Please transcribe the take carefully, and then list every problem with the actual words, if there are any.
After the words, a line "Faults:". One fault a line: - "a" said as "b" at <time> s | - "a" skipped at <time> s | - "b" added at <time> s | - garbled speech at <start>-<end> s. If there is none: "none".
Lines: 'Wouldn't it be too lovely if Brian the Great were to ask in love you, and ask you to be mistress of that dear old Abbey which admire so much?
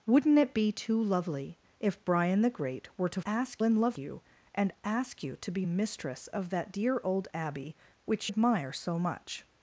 'Wouldn't it be too lovely if Brian the Great were to ask in love you, and ask you to be mistress of that dear old Abbey which admire so much?
Faults:
none